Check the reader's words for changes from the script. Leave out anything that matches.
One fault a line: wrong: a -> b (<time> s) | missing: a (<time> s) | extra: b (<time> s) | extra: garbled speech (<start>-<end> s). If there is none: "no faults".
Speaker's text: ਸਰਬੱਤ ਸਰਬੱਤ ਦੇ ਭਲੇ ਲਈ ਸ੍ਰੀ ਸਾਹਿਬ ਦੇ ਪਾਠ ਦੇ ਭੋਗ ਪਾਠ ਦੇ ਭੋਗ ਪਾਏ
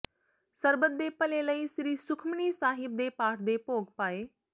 missing: ਸਰਬੱਤ (0.9 s)
extra: ਸੁਖਮਨੀ (2.0 s)
missing: ਪਾਠ ਦੇ ਭੋਗ (3.9 s)